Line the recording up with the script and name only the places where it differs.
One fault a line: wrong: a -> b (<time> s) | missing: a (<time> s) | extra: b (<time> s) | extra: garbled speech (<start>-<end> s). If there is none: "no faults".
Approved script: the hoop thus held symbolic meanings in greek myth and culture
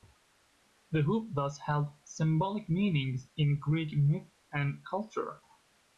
no faults